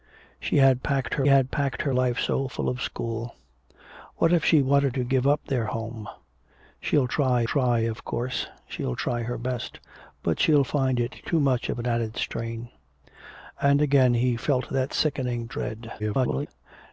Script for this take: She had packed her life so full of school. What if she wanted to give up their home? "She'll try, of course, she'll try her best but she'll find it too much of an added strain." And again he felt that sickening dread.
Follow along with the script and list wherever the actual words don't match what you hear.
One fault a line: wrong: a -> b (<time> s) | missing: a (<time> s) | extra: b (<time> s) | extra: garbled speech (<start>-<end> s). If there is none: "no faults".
extra: had packed her (1.3 s)
extra: try (7.4 s)
extra: garbled speech (16.0-16.5 s)